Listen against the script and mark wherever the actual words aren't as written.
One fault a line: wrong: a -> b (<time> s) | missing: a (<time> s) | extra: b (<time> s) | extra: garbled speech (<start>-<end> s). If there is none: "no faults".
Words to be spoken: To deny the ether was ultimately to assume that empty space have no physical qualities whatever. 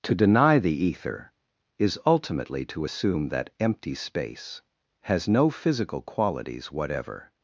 wrong: was -> is (1.8 s)
wrong: have -> has (5.0 s)